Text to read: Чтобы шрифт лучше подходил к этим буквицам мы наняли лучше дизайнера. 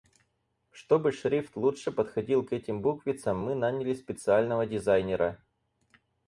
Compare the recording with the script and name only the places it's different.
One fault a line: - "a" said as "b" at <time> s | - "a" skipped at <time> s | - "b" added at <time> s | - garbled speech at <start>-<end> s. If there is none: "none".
- "лучше" said as "специального" at 3.9 s